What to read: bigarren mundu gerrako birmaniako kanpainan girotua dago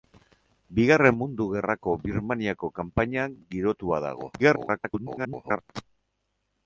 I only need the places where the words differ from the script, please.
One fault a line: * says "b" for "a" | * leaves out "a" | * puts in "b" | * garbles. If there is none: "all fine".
* garbles